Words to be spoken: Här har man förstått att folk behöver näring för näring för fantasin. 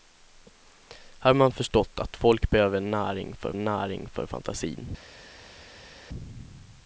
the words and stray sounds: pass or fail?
pass